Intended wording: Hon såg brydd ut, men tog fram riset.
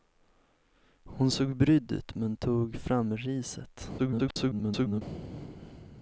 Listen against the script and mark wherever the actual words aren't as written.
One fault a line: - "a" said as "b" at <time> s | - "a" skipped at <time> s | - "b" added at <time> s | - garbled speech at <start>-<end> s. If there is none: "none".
- garbled speech at 4.0-5.0 s